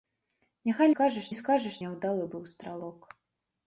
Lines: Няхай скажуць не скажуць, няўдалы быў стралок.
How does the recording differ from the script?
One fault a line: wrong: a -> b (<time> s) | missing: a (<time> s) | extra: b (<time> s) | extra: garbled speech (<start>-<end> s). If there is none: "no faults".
no faults